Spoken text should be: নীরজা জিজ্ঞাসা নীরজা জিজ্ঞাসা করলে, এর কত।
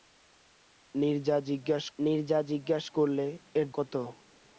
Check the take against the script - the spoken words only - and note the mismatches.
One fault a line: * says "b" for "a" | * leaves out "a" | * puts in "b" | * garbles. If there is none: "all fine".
all fine